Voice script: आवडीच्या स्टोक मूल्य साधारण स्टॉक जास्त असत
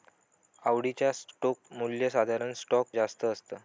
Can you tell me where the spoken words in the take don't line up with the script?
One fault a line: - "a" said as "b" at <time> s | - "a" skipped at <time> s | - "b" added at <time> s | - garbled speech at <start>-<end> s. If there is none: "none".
none